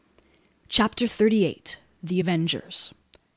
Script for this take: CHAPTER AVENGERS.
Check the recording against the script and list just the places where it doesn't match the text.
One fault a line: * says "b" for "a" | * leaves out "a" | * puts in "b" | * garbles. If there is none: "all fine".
* puts in "THIRTY EIGHT THE"